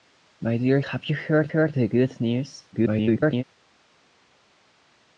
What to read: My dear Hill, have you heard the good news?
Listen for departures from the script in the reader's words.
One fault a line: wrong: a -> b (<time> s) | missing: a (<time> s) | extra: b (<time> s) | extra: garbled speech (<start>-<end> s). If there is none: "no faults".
missing: Hill (0.8 s)
extra: heard (1.5 s)
extra: garbled speech (2.7-3.4 s)